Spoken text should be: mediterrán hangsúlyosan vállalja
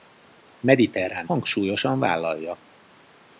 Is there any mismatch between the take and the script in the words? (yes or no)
no